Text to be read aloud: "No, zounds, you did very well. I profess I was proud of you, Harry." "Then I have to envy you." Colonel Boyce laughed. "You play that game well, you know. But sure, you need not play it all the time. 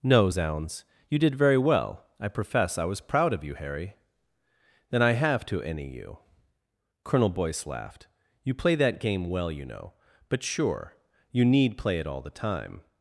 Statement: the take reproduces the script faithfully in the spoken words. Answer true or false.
false